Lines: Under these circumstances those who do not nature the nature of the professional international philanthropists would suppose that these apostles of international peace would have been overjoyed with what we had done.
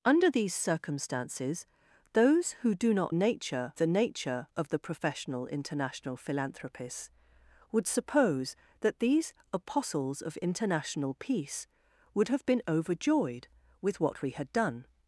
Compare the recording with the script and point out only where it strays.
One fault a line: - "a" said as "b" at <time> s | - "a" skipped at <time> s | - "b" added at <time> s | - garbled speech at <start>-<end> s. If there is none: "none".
none